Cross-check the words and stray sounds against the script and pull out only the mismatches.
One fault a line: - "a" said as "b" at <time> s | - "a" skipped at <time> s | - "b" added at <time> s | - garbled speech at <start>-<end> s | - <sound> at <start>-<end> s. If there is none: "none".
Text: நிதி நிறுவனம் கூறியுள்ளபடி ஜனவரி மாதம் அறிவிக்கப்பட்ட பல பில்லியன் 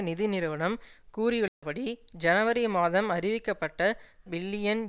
- dropout at 1.5-1.6 s
- "பல" skipped at 3.8 s